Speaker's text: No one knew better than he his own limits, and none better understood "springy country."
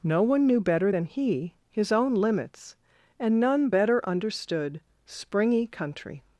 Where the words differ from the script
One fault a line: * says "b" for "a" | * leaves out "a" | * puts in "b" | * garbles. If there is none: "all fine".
all fine